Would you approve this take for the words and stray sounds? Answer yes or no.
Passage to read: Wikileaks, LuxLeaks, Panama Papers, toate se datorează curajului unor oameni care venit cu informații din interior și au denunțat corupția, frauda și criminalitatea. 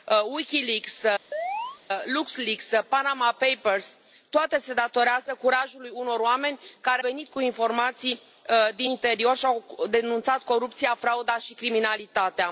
no